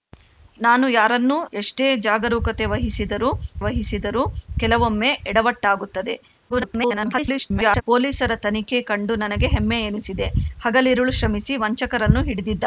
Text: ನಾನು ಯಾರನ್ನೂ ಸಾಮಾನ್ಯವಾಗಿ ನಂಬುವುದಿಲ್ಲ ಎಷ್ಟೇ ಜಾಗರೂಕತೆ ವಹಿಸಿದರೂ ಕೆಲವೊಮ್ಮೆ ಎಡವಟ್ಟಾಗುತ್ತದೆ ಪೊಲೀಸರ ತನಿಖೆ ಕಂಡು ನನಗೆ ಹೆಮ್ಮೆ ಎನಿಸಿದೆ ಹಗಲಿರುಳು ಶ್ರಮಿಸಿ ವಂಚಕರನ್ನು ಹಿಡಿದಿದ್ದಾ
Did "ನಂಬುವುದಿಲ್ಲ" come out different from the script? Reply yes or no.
yes